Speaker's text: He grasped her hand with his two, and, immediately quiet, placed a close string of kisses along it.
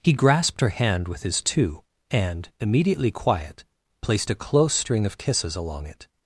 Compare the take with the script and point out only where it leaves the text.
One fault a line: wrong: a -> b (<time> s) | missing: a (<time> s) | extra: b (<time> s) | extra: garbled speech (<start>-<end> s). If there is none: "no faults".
no faults